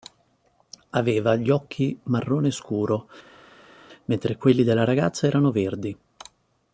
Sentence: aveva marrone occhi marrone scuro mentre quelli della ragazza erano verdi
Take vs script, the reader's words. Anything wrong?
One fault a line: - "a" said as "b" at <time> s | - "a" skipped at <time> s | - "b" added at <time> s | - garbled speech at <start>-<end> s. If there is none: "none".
- "marrone" said as "gli" at 1.4 s